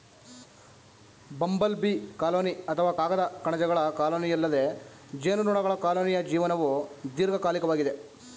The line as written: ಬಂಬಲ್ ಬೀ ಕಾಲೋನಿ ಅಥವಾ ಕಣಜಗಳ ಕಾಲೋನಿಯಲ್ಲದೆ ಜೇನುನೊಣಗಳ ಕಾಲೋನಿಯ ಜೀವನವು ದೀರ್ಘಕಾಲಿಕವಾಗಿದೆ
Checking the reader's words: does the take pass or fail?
fail